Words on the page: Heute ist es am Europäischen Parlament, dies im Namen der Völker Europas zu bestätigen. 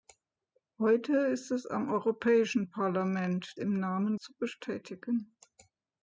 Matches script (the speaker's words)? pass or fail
fail